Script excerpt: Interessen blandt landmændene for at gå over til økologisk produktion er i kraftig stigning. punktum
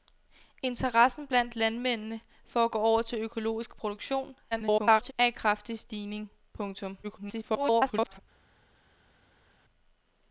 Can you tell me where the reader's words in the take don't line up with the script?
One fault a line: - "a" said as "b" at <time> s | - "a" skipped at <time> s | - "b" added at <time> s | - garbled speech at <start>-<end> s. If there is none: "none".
- garbled speech at 4.5-5.1 s
- garbled speech at 7.0-8.2 s